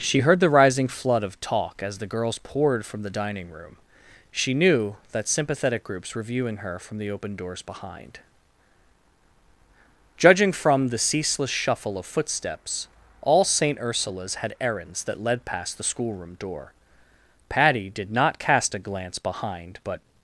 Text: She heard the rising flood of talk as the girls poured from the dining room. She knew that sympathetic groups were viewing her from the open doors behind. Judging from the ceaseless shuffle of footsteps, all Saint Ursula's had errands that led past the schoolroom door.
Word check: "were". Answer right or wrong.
right